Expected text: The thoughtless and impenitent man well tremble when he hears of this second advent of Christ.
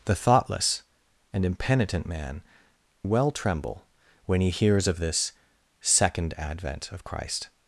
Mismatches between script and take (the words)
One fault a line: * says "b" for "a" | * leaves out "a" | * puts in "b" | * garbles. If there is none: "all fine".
all fine